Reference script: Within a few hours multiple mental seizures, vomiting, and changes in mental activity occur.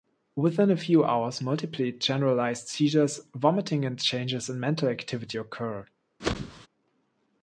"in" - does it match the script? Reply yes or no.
yes